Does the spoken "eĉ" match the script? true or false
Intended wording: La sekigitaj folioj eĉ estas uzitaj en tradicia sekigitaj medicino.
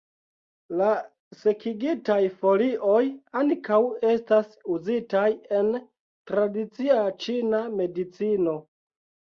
false